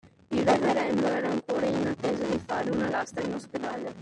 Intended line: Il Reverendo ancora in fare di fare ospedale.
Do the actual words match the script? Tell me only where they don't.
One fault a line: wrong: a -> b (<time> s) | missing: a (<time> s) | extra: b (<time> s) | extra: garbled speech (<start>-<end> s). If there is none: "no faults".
extra: era (1.1 s)
wrong: fare -> attesa (1.9 s)
extra: una lastra in (2.7 s)